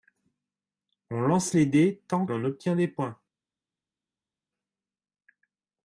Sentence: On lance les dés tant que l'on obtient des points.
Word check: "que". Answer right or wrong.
wrong